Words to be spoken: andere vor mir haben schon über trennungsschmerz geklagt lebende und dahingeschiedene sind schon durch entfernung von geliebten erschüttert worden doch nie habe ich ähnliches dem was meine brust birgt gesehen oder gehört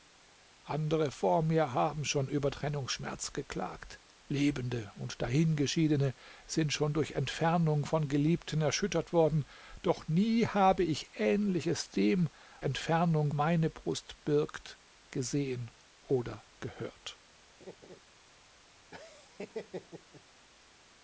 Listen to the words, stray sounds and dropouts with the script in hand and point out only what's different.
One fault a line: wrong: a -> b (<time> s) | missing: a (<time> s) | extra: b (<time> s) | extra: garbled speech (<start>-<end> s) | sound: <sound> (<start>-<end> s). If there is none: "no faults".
wrong: was -> entfernung (12.6 s)
sound: laugh (17.6-18.0 s)
sound: laugh (18.9-20.2 s)